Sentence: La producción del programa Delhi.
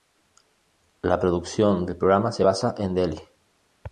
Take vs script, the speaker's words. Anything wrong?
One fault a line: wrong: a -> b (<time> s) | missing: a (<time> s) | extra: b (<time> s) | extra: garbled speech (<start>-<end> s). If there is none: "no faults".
extra: se basa en (2.3 s)